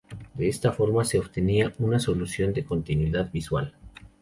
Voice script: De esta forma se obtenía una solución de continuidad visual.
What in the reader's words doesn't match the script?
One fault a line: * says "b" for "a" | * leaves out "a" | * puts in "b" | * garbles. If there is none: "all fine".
all fine